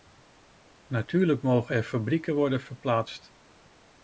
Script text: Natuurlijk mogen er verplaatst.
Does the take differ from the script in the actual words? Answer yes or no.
yes